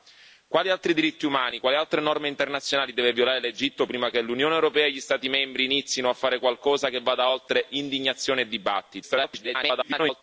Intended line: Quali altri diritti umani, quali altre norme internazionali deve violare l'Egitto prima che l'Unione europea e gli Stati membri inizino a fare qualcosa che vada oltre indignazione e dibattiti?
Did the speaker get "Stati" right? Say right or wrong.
right